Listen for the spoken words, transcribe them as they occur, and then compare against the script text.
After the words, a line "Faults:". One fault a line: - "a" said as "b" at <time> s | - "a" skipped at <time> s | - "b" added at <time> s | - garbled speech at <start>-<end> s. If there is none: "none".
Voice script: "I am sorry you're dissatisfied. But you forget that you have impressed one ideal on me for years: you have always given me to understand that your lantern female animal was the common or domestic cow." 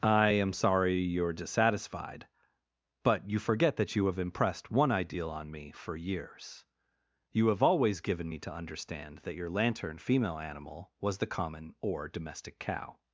"I am sorry you're dissatisfied. But you forget that you have impressed one ideal on me for years: you have always given me to understand that your lantern female animal was the common or domestic cow."
Faults:
none